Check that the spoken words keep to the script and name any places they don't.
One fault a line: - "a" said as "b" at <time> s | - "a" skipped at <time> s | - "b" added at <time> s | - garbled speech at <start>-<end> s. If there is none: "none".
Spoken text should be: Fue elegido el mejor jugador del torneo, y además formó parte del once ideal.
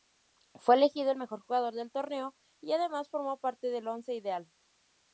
none